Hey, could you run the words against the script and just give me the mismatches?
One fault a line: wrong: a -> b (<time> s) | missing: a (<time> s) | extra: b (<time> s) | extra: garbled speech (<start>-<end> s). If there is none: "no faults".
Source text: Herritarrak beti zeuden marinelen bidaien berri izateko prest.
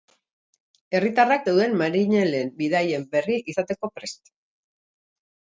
missing: beti (1.4 s)